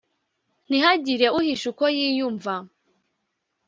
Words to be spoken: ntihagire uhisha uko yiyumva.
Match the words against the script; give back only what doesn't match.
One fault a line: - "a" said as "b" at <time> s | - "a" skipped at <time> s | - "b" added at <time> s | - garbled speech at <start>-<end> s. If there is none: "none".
none